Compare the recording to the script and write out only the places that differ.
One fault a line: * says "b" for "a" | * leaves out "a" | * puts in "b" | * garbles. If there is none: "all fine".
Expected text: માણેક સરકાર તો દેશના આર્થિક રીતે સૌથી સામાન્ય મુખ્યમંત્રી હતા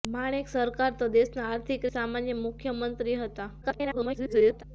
* leaves out "રીતે સૌથી"
* garbles